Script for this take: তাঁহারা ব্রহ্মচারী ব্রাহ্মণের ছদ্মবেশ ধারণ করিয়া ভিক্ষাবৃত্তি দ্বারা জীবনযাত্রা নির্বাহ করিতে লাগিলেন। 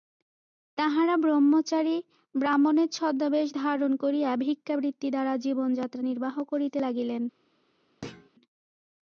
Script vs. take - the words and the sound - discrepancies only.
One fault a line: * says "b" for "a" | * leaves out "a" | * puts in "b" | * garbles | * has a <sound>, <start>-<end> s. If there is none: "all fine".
* has a thud, 8.0-8.3 s